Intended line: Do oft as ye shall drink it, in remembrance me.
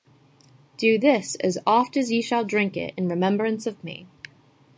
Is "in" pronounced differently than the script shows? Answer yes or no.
no